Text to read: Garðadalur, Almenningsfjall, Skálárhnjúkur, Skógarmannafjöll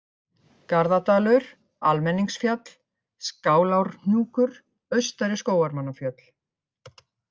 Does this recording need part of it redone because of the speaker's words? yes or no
yes